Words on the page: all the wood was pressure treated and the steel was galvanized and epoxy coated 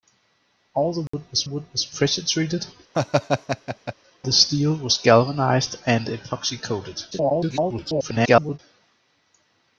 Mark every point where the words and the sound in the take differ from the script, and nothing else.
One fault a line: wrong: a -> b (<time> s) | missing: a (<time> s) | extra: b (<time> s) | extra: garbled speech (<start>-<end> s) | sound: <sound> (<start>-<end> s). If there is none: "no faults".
sound: dropout (1.1-1.1 s)
extra: wood was (1.4 s)
missing: and (2.7 s)
sound: laugh (2.9-3.9 s)
extra: garbled speech (7.1-8.6 s)